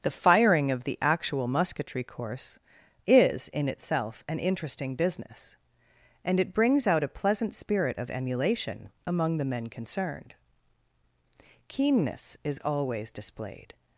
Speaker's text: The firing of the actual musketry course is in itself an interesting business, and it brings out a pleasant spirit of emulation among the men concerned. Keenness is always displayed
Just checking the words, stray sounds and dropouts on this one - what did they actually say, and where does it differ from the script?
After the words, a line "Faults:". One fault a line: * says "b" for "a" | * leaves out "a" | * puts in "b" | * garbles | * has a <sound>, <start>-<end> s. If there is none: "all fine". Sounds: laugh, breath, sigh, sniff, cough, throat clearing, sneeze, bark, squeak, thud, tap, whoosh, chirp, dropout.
The firing of the actual musketry course is in itself an interesting business, and it brings out a pleasant spirit of emulation among the men concerned. Keenness is always displayed
Faults:
all fine